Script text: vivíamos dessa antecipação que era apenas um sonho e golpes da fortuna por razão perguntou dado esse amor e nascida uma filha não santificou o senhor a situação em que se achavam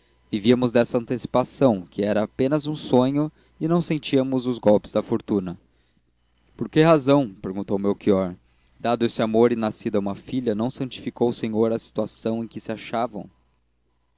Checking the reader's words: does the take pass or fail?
fail